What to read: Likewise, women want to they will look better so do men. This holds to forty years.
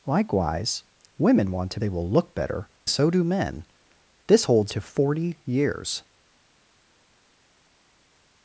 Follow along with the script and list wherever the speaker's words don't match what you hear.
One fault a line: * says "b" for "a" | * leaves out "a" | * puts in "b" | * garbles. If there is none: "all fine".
all fine